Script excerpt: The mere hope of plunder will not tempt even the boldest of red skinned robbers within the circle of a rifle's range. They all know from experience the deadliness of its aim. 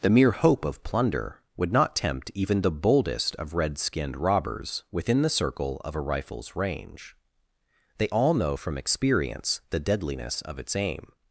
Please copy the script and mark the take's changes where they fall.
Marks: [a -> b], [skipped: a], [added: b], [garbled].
The mere hope of plunder [will -> would] not tempt even the boldest of red skinned robbers within the circle of a rifle's range. They all know from experience the deadliness of its aim.